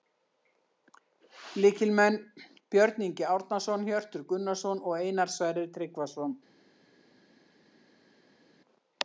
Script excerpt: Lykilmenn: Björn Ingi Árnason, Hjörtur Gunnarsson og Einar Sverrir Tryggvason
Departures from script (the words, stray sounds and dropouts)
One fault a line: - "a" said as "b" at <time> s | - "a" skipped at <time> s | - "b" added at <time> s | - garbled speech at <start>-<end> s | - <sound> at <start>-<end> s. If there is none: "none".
none